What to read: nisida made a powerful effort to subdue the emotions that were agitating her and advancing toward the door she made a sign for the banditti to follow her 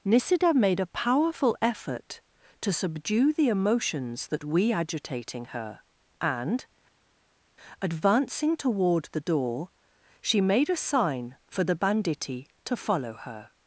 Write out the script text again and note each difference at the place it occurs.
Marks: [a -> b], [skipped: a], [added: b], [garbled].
nisida made a powerful effort to subdue the emotions that [were -> we] agitating her and advancing toward the door she made a sign for the banditti to follow her